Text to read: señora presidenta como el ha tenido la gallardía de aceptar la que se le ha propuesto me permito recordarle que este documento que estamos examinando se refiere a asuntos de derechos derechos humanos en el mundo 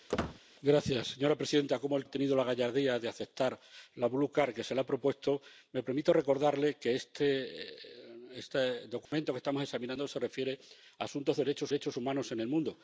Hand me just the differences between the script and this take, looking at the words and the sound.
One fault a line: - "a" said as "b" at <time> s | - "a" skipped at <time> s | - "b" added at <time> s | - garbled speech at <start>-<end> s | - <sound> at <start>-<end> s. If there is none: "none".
- squeak at 0.1-0.4 s
- dropout at 9.1-9.1 s